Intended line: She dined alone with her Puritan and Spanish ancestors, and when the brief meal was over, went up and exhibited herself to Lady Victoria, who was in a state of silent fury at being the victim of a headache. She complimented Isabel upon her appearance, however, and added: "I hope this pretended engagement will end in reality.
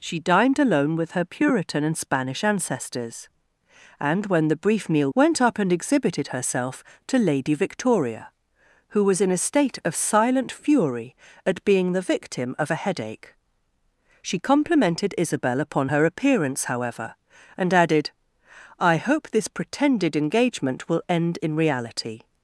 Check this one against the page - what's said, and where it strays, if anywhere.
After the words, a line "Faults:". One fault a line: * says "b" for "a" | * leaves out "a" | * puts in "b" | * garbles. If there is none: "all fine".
She dined alone with her Puritan and Spanish ancestors, and when the brief meal went up and exhibited herself to Lady Victoria, who was in a state of silent fury at being the victim of a headache. She complimented Isabel upon her appearance, however, and added: "I hope this pretended engagement will end in reality.
Faults:
* leaves out "was over"